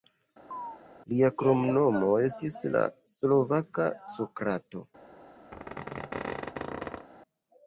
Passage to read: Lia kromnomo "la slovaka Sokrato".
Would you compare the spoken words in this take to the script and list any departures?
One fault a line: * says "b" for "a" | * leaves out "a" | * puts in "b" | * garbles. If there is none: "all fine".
* puts in "estis"